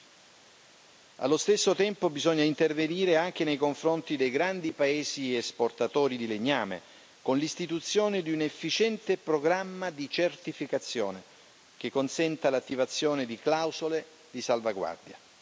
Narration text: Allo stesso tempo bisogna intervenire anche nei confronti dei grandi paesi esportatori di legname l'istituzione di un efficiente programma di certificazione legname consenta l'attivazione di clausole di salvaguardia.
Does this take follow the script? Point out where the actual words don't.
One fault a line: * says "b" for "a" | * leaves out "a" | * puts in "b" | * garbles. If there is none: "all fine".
* puts in "con"
* says "che" for "legname"